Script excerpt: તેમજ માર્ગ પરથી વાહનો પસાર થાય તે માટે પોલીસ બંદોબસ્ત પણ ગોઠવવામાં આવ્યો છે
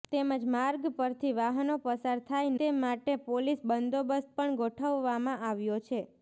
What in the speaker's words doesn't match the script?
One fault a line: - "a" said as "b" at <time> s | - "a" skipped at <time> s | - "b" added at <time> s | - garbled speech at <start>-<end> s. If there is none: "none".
none